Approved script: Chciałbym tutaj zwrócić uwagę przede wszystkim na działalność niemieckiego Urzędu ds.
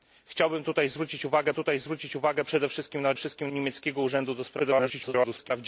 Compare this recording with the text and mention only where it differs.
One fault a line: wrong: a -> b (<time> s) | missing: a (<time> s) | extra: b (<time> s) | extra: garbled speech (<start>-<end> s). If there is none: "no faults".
extra: tutaj zwrócić uwagę (1.5 s)
wrong: działalność -> wszystkim (3.1 s)
extra: garbled speech (4.6-5.5 s)